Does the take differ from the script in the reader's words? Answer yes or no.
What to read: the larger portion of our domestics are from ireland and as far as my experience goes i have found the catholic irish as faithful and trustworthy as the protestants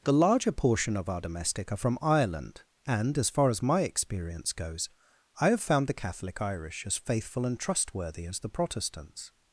yes